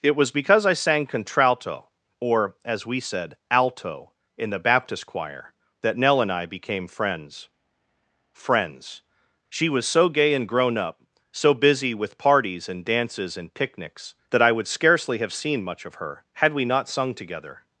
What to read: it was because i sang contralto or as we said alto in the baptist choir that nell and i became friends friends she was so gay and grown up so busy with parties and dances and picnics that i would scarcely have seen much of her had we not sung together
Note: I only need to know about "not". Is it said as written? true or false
true